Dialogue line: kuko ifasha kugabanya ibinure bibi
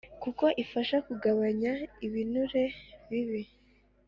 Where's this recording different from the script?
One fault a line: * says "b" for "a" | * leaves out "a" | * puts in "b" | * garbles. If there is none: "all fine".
all fine